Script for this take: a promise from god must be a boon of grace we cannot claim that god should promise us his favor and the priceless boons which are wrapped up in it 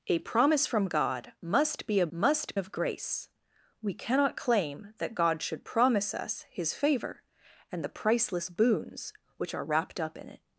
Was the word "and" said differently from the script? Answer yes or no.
no